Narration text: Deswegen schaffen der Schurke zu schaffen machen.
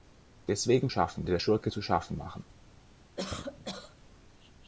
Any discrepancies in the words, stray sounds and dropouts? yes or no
yes